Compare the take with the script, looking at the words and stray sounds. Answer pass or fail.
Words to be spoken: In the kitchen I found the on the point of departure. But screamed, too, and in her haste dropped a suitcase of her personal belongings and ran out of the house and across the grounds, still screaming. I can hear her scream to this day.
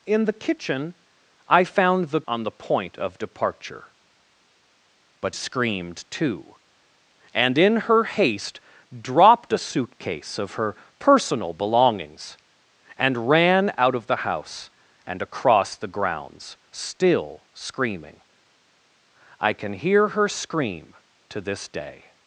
pass